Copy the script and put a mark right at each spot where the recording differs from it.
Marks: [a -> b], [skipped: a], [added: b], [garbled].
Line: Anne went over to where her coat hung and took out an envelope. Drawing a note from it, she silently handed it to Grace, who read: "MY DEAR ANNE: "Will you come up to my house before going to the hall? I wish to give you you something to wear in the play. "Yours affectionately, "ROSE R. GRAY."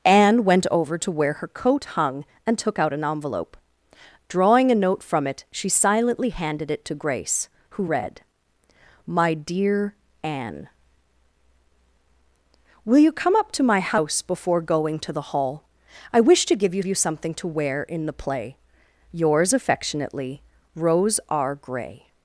Anne went over to where her coat hung and took out an envelope. Drawing a note from it, she silently handed it to Grace, who read: "MY DEAR ANNE: "Will you come up to my house before going to the hall? I wish to give you you something to wear in the play. "Yours affectionately, "ROSE R. GRAY."